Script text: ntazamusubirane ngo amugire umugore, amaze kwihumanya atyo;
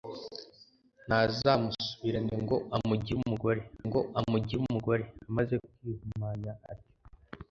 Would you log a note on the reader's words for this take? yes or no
yes